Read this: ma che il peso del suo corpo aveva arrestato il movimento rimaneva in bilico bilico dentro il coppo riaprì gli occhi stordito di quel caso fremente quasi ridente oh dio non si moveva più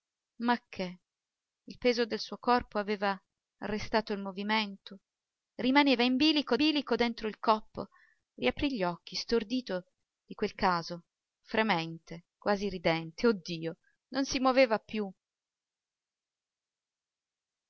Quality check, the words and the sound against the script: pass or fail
pass